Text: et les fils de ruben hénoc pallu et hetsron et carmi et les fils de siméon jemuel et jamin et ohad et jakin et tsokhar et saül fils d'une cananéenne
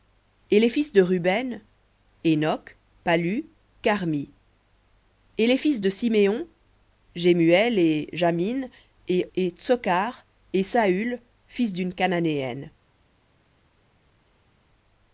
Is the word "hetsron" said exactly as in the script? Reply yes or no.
no